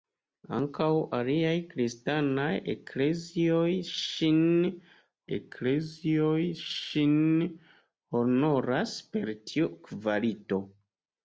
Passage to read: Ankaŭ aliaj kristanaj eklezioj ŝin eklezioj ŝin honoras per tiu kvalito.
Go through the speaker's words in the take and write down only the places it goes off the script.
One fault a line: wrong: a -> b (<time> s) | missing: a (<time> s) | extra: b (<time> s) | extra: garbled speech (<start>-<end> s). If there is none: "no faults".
no faults